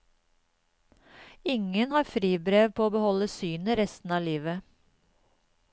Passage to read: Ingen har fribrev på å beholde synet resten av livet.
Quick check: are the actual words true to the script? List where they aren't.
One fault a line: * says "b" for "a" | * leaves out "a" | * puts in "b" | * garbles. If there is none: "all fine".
all fine